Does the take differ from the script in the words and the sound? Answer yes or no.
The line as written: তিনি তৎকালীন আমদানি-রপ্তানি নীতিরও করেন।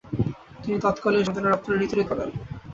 no